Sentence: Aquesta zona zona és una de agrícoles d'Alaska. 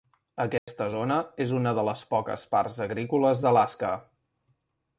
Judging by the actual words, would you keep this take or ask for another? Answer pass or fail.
fail